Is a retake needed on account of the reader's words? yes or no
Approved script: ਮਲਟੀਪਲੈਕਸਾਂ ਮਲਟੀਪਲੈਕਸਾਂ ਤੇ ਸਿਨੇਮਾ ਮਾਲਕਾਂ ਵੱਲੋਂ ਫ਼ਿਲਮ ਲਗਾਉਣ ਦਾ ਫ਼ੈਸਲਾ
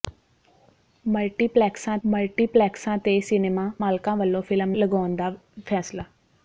no